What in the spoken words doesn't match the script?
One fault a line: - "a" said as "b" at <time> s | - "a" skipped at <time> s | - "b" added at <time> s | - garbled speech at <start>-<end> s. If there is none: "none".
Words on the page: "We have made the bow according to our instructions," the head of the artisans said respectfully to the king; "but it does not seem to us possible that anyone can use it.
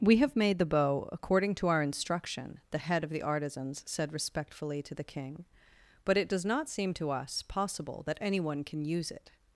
- "instructions" said as "instruction" at 1.8 s